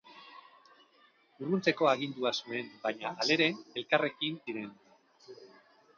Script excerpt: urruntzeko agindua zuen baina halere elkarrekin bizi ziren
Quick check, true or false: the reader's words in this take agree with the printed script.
false